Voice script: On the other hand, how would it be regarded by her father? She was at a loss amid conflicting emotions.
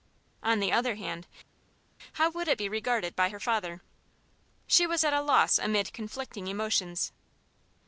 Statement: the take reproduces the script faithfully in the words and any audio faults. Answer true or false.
true